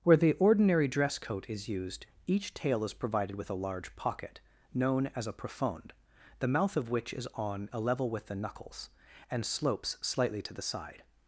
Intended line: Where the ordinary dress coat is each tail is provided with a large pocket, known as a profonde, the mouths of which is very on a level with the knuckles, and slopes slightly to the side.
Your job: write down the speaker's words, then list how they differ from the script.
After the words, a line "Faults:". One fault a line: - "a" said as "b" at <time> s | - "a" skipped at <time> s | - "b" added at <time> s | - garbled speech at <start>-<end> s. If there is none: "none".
Where the ordinary dress coat is used, each tail is provided with a large pocket, known as a profonde, the mouth of which is on a level with the knuckles, and slopes slightly to the side.
Faults:
- "used" added at 1.7 s
- "mouths" said as "mouth" at 6.5 s
- "very" skipped at 7.3 s